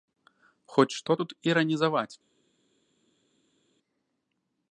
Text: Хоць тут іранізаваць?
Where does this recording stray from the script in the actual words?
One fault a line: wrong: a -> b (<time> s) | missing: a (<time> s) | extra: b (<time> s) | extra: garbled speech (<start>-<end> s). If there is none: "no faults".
extra: што (1.0 s)